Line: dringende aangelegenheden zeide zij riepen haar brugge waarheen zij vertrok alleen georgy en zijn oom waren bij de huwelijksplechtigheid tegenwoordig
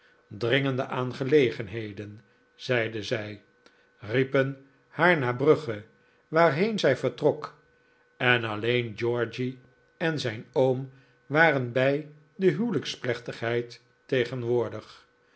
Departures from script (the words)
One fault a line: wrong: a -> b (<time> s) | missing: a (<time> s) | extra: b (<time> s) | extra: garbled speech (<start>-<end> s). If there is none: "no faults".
extra: naar (5.2 s)
extra: en (8.2 s)